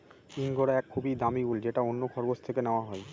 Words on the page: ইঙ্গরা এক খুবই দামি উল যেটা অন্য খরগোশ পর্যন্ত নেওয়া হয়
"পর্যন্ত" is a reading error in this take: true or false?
true